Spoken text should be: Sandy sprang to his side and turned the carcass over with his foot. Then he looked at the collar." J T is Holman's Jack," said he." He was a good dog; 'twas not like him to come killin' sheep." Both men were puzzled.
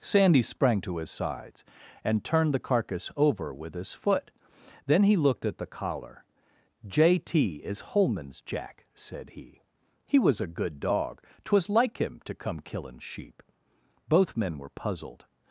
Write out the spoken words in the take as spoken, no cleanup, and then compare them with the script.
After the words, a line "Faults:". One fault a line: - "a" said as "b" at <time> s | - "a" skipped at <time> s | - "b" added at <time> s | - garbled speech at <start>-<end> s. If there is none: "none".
Sandy sprang to his sides and turned the carcass over with his foot. Then he looked at the collar." J T is Holman's Jack," said he." He was a good dog; 'twas like him to come killin' sheep." Both men were puzzled.
Faults:
- "side" said as "sides" at 1.1 s
- "not" skipped at 11.7 s